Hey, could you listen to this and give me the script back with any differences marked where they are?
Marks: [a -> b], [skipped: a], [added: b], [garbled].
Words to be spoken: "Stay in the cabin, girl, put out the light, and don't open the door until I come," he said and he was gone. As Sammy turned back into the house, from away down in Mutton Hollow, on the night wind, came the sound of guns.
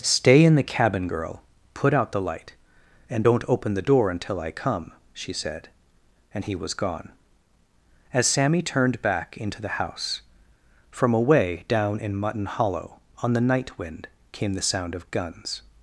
"Stay in the cabin, girl, put out the light, and don't open the door until I come," [he -> she] said and he was gone. As Sammy turned back into the house, from away down in Mutton Hollow, on the night wind, came the sound of guns.